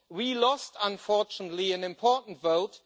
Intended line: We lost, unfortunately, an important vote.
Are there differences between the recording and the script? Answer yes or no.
no